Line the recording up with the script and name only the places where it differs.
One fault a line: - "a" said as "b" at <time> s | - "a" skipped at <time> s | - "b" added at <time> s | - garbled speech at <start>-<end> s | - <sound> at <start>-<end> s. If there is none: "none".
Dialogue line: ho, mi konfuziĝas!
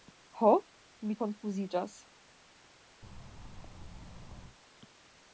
- thud at 3.0-4.6 s